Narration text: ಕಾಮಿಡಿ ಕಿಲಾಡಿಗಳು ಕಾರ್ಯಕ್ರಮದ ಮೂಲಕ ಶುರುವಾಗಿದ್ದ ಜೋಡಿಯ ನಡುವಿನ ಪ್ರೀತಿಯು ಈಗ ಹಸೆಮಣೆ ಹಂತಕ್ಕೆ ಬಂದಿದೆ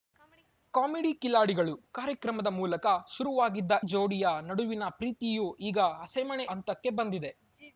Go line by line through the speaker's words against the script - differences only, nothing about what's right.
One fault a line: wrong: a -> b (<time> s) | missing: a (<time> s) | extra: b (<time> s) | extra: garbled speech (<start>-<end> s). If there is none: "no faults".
no faults